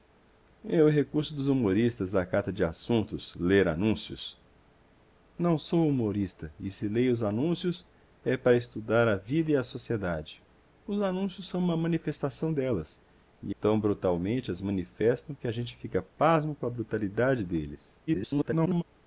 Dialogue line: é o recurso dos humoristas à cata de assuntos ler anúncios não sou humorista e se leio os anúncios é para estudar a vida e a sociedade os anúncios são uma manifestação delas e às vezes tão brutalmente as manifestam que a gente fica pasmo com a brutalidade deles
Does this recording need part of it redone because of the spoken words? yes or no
yes